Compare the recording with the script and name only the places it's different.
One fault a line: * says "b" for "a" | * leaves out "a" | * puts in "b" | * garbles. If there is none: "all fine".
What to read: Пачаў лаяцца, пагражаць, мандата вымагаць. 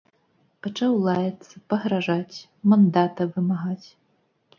all fine